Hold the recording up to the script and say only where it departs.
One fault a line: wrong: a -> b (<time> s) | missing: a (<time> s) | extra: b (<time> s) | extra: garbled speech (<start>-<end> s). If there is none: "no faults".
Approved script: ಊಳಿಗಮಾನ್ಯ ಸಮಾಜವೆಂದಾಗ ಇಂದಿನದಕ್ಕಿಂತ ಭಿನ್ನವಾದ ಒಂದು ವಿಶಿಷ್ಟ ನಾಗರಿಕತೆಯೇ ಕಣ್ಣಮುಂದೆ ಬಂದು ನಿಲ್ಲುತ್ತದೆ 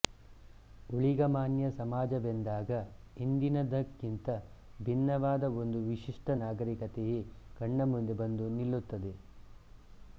no faults